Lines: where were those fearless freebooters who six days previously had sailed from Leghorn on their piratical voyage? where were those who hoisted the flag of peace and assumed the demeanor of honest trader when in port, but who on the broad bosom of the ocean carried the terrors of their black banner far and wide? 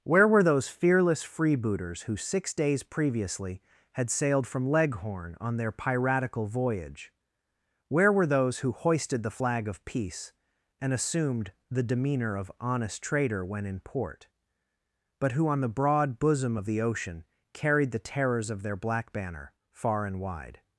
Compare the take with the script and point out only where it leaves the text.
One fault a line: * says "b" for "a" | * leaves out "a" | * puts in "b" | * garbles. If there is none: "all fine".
all fine